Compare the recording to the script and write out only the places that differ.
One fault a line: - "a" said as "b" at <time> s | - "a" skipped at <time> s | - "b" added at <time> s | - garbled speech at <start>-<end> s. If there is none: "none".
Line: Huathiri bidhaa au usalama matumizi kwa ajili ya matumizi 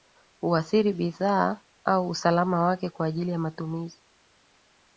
- "matumizi" said as "wake" at 2.6 s